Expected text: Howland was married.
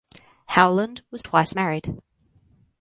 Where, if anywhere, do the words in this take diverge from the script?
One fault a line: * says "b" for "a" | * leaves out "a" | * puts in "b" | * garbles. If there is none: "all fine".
* puts in "twice"